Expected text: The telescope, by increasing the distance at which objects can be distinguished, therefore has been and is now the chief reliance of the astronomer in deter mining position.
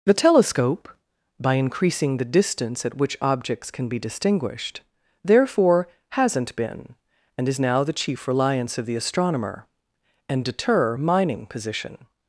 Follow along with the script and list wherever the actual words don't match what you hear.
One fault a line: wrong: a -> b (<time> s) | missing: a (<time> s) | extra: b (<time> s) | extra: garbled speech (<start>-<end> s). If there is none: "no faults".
wrong: has -> hasn't (6.1 s)
wrong: in -> and (10.3 s)